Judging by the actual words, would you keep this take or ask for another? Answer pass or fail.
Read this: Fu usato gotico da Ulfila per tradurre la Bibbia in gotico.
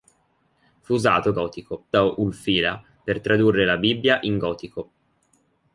pass